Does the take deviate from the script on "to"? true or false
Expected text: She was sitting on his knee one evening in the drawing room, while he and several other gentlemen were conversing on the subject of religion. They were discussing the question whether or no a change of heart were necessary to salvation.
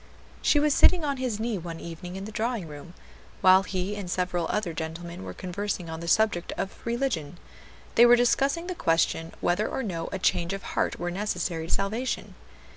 true